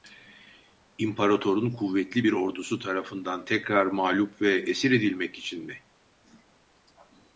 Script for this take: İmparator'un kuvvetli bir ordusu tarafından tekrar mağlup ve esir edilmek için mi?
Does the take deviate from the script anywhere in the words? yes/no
no